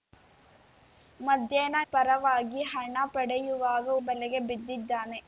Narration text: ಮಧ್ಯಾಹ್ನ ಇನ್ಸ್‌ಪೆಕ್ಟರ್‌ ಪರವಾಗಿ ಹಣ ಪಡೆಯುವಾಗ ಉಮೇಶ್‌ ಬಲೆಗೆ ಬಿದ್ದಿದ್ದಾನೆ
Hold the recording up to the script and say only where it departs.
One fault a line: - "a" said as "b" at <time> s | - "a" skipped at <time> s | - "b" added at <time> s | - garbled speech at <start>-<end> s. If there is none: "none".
- "ಇನ್ಸ್‌ಪೆಕ್ಟರ್" skipped at 1.8 s
- "ಉಮೇಶ್" skipped at 3.9 s